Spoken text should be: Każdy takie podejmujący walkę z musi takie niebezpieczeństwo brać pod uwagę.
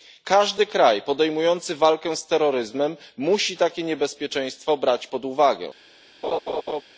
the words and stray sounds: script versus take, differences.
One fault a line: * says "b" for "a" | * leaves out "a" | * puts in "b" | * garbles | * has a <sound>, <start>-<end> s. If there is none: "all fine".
* says "kraj" for "takie"
* puts in "terroryzmem"
* has a laugh, 6.2-6.8 s